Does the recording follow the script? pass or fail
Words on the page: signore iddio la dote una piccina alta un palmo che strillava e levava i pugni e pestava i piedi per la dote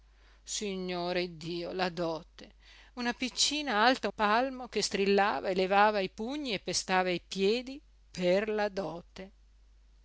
fail